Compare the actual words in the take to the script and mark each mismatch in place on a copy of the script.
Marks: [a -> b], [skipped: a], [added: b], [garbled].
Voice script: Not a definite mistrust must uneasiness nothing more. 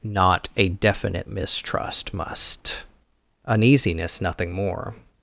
Not a definite mistrust must uneasiness nothing more.